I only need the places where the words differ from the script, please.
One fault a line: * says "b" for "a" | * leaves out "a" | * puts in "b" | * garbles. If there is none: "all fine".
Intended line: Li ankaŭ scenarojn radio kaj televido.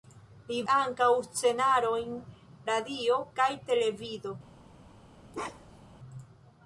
all fine